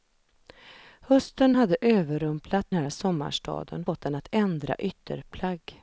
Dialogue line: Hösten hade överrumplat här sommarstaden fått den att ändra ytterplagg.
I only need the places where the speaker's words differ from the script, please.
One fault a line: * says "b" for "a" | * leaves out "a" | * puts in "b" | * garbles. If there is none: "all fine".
all fine